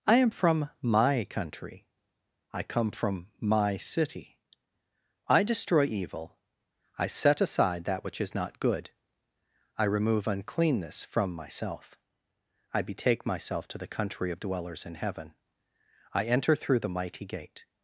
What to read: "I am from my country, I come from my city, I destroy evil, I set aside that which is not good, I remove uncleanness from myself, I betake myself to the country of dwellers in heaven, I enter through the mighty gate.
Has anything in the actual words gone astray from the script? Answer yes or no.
no